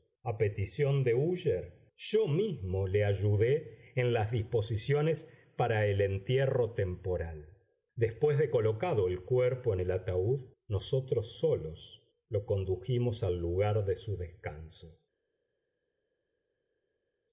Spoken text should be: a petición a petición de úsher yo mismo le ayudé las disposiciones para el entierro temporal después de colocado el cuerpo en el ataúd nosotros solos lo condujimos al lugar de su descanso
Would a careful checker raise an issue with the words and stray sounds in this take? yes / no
yes